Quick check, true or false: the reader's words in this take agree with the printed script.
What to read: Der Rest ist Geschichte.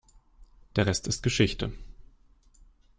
true